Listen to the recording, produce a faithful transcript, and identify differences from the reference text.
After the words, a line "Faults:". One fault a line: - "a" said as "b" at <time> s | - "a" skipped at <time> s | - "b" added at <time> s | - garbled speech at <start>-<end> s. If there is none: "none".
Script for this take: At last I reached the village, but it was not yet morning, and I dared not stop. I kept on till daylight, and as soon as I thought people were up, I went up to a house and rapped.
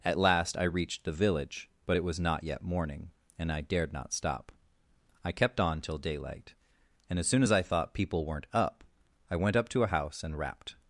At last I reached the village, but it was not yet morning, and I dared not stop. I kept on till daylight, and as soon as I thought people weren't up, I went up to a house and rapped.
Faults:
- "were" said as "weren't" at 8.3 s